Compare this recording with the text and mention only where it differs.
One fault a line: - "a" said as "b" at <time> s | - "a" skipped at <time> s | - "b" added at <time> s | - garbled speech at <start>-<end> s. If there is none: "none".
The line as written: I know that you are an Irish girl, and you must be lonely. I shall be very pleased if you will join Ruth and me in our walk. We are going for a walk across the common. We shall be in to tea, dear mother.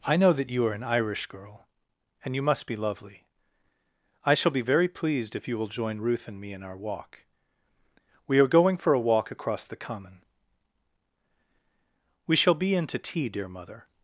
- "lonely" said as "lovely" at 2.8 s